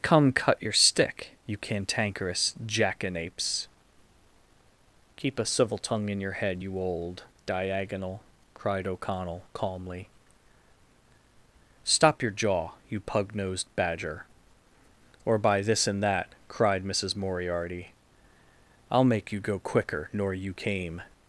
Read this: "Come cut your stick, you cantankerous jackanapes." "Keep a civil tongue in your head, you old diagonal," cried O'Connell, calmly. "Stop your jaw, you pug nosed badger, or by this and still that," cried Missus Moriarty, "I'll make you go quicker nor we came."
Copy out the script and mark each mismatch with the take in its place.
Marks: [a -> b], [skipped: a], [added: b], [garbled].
"Come cut your stick, you cantankerous jackanapes." "Keep a civil tongue in your head, you old diagonal," cried O'Connell, calmly. "Stop your jaw, you pug nosed badger, or by this and [skipped: still] that," cried Missus Moriarty, "I'll make you go quicker nor [we -> you] came."